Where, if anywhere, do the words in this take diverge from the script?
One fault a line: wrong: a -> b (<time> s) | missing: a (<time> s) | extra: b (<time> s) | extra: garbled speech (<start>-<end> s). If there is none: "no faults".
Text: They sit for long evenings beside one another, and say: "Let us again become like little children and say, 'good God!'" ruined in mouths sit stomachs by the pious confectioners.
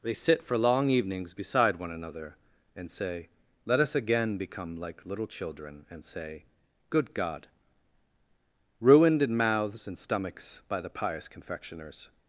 wrong: sit -> and (9.9 s)